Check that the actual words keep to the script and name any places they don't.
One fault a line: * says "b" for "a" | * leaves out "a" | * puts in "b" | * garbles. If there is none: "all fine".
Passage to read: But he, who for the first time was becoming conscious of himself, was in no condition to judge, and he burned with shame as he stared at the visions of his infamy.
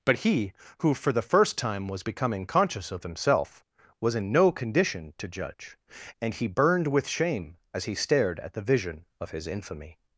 * says "vision" for "visions"